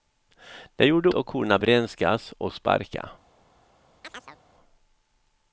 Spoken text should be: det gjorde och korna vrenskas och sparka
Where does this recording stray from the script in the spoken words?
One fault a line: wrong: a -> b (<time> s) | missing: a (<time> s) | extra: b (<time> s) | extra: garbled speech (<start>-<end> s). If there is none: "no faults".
no faults